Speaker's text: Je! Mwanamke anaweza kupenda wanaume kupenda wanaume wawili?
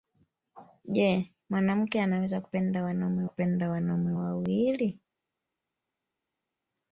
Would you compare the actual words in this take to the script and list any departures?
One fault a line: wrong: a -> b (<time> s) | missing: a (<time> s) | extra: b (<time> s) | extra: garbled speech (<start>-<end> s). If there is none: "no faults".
no faults